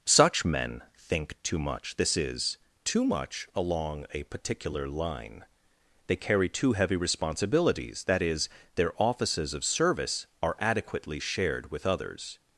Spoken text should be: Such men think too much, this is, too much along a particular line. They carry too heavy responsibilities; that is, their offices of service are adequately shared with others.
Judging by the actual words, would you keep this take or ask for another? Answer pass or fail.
pass